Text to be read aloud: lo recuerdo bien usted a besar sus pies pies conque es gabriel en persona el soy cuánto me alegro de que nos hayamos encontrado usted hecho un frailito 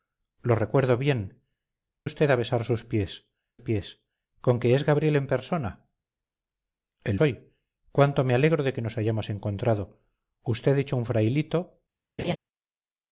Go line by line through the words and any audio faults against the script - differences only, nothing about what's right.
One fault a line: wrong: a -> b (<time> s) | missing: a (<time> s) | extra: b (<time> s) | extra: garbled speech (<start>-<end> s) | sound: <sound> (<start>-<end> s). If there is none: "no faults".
sound: laugh (12.2-12.4 s)